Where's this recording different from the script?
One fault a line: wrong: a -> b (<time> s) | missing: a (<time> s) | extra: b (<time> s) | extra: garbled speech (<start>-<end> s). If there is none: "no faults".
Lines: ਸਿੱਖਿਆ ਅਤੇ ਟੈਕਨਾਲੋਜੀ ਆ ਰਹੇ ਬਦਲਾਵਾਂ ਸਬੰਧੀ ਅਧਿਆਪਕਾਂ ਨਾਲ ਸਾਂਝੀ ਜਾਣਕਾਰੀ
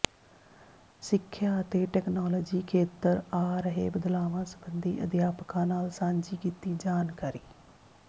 extra: ਖੇਤਰ (2.7 s)
extra: ਕੀਤੀ (6.4 s)